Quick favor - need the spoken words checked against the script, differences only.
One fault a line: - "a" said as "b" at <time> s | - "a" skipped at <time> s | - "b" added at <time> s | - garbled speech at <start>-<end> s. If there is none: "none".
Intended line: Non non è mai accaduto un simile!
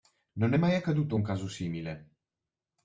- "non" skipped at 0.5 s
- "caso" added at 1.2 s